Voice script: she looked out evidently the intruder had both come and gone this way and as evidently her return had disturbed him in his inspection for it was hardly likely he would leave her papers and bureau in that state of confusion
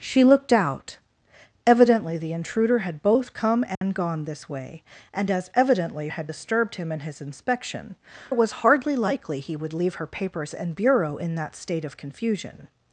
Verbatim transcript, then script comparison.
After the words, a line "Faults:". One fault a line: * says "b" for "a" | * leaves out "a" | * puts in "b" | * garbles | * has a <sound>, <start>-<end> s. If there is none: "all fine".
she looked out evidently the intruder had both come and gone this way and as evidently had disturbed him in his inspection it was hardly likely he would leave her papers and bureau in that state of confusion
Faults:
* has a dropout, 3.7-3.8 s
* leaves out "her return"
* leaves out "for"